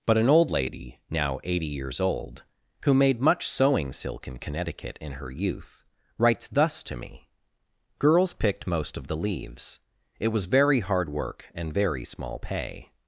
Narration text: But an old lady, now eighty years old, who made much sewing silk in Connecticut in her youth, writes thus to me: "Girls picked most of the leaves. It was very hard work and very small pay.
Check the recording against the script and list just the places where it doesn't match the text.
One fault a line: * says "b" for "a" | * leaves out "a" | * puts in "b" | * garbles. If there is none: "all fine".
all fine